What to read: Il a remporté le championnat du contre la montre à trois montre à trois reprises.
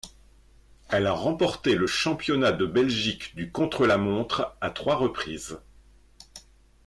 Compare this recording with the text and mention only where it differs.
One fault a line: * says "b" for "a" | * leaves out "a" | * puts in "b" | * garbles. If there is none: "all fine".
* says "Elle" for "Il"
* puts in "de Belgique"
* leaves out "montre à trois"